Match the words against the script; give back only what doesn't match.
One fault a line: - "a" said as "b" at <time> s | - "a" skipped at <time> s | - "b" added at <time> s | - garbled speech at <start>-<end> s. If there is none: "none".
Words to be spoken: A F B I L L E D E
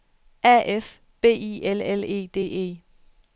none